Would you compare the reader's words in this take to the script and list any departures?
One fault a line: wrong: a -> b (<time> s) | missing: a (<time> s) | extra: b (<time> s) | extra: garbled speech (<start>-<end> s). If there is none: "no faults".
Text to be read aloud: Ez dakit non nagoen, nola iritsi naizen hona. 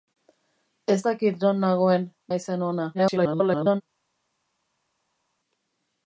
missing: nola iritsi (2.1 s)
extra: garbled speech (2.9-3.8 s)